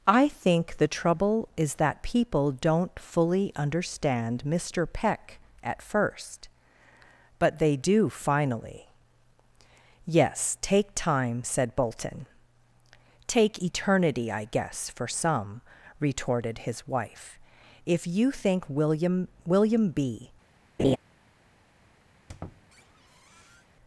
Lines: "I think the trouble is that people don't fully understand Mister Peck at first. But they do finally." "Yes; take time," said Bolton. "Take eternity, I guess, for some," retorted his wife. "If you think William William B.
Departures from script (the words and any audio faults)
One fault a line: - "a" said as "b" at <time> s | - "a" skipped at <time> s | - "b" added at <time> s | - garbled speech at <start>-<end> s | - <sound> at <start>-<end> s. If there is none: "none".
- laugh at 20.8-21.0 s
- squeak at 22.1-23.7 s